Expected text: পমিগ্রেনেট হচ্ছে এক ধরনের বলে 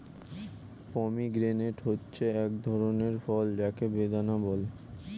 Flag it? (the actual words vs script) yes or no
yes